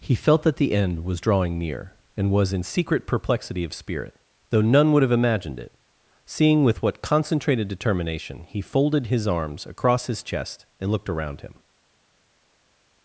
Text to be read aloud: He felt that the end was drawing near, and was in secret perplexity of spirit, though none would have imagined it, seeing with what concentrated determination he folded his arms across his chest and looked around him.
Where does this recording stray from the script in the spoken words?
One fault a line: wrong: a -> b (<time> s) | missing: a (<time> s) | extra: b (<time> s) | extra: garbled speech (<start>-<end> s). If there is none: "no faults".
no faults